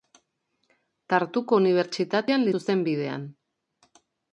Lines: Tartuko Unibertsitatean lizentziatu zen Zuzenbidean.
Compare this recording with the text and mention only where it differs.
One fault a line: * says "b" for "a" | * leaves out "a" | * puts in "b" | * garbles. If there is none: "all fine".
* leaves out "lizentziatu zen"